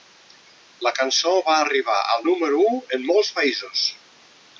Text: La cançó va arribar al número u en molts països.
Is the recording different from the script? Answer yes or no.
no